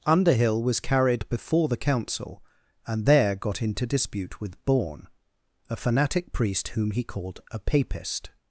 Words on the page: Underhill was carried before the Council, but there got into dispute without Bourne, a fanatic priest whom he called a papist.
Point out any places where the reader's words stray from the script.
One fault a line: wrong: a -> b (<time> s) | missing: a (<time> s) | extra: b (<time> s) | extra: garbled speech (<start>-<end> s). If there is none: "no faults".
wrong: but -> and (2.9 s)
wrong: without -> with (4.4 s)